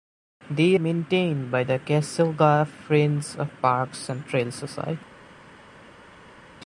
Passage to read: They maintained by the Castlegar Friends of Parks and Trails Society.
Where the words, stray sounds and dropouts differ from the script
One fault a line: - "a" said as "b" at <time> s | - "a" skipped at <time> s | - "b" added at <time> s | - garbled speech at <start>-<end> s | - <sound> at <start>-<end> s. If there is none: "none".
none